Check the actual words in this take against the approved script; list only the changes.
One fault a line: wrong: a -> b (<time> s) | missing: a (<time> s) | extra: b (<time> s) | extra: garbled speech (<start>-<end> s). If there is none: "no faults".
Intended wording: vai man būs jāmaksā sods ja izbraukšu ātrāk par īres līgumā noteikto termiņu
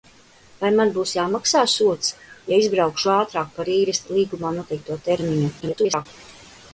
extra: garbled speech (5.6-6.1 s)